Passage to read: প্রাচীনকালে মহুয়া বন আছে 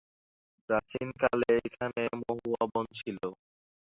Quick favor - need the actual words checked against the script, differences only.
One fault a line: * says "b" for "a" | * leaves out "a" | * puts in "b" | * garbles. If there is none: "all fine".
* puts in "এখানে"
* says "ছিল" for "আছে"